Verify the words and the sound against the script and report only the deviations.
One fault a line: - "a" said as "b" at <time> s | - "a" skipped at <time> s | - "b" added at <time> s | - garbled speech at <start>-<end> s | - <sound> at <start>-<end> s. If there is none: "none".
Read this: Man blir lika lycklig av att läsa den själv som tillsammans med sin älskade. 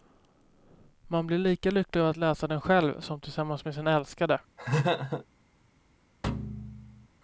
- laugh at 4.6-5.3 s
- thud at 6.2-7.1 s